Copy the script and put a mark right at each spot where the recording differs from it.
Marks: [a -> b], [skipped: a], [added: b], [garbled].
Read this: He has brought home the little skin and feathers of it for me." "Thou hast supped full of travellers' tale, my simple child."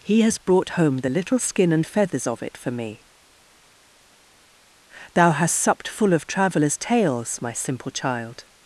He has brought home the little skin and feathers of it for me." "Thou hast supped full of travellers' [tale, -> tales] my simple child."